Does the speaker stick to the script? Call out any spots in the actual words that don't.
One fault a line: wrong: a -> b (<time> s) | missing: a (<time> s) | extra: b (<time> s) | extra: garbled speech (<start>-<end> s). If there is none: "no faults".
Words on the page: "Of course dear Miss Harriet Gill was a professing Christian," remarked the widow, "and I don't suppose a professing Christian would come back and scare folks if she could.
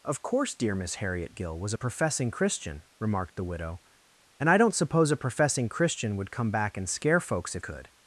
missing: she (7.6 s)